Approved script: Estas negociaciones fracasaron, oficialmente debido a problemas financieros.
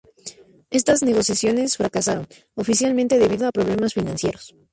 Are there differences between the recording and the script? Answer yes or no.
no